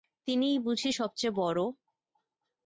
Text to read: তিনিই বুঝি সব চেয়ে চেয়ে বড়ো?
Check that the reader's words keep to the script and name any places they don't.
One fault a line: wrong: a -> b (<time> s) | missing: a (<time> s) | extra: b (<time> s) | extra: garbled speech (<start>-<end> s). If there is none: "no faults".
missing: চেয়ে (1.4 s)